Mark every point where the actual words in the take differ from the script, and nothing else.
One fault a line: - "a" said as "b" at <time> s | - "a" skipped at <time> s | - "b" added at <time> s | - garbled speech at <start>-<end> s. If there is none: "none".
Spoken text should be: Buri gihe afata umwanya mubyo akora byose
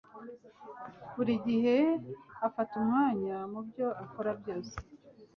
none